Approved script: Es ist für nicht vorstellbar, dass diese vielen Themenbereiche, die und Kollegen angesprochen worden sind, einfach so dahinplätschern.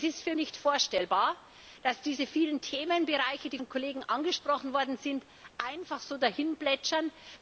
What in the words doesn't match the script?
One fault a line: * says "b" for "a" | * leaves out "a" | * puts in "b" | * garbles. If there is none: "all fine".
all fine